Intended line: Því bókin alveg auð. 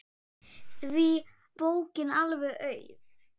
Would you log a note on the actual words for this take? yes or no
no